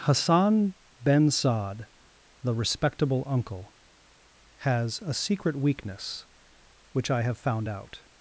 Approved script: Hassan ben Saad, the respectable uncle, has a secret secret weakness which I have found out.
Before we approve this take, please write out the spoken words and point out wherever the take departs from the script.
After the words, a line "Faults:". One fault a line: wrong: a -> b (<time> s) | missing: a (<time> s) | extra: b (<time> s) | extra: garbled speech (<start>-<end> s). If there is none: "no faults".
Hassan ben Saad, the respectable uncle, has a secret weakness which I have found out.
Faults:
missing: secret (5.6 s)